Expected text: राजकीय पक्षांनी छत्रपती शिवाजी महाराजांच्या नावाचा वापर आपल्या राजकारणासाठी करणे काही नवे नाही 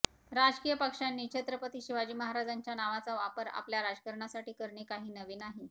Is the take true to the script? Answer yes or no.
yes